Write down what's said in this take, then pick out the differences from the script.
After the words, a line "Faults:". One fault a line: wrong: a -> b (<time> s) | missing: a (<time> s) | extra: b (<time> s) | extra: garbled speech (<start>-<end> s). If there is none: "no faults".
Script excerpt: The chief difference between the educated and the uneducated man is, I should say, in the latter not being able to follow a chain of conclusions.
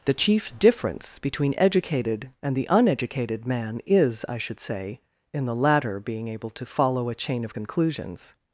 The chief difference between educated and the uneducated man is, I should say, in the latter being able to follow a chain of conclusions.
Faults:
missing: the (1.6 s)
missing: not (6.0 s)